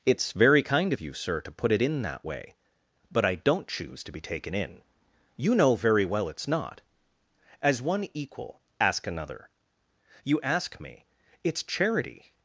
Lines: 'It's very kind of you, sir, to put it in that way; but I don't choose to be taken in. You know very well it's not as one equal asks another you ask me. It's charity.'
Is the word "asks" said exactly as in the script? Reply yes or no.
no